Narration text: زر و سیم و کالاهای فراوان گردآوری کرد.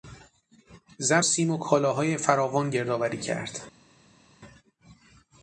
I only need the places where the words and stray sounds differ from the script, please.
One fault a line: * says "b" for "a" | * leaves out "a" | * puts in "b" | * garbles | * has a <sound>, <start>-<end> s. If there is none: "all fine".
* leaves out "و"